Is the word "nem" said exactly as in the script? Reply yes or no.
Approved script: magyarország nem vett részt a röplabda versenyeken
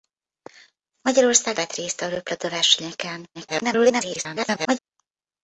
no